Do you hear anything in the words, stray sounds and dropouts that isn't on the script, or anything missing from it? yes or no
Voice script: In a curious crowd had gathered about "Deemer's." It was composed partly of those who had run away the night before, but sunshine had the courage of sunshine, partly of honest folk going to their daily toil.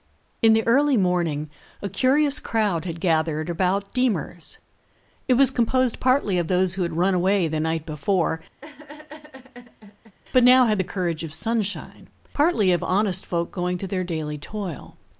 yes